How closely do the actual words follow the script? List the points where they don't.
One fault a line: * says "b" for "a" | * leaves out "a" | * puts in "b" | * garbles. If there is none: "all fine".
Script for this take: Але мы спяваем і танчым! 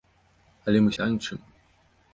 * leaves out "спяваем"